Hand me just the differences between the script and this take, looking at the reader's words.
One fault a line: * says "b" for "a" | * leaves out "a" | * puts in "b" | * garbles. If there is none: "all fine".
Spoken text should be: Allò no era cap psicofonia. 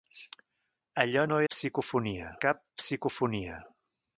* says "psicofonia" for "era"